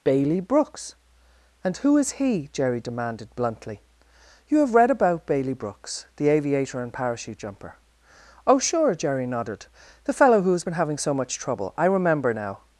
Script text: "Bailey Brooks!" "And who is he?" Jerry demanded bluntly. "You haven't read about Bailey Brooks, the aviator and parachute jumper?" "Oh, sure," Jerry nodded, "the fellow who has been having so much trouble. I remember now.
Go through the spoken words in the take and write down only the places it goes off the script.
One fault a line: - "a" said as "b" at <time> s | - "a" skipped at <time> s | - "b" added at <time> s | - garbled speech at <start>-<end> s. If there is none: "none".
- "haven't" said as "have" at 4.6 s